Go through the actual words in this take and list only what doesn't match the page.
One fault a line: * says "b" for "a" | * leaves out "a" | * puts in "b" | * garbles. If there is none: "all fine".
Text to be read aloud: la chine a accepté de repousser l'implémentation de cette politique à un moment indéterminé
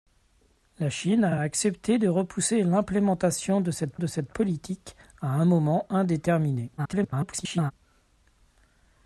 * puts in "a"
* puts in "de cette"
* garbles